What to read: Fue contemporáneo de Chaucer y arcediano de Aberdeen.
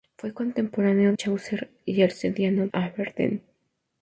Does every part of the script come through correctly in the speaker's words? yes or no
no